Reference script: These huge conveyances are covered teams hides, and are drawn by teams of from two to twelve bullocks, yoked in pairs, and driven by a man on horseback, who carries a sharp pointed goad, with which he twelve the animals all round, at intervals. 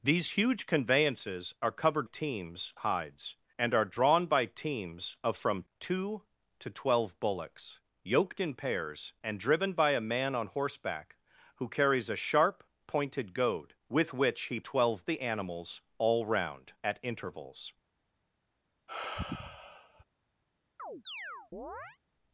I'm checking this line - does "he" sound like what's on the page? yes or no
yes